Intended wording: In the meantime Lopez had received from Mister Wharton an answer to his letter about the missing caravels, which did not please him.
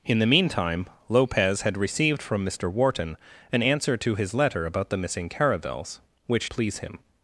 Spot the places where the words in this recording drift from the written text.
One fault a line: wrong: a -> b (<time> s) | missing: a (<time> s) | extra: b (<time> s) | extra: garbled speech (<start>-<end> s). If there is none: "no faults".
missing: did not (6.5 s)